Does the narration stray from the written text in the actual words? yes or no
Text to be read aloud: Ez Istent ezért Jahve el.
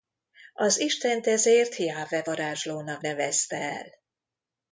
yes